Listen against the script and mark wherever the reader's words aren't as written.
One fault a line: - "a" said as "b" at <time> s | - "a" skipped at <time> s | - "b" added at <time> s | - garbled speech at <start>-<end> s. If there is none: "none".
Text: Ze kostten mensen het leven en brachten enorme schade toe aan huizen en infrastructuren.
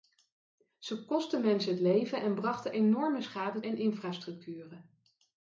- "toe aan huizen" skipped at 3.6 s